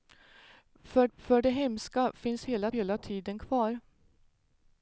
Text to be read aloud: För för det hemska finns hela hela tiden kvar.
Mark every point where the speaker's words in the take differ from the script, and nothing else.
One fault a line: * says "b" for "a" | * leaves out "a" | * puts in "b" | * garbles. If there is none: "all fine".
all fine